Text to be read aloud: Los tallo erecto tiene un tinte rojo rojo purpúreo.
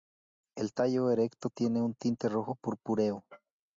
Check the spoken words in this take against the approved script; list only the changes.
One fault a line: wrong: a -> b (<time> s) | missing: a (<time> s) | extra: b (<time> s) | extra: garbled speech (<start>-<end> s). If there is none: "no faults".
wrong: Los -> El (0.6 s)
missing: rojo (2.5 s)